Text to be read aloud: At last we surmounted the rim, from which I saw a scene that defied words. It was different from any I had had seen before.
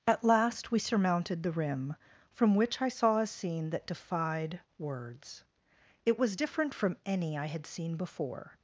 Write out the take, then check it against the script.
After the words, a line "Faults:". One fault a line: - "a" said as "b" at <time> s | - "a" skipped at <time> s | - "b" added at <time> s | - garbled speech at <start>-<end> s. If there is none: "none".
At last we surmounted the rim, from which I saw a scene that defied words. It was different from any I had seen before.
Faults:
- "had" skipped at 7.6 s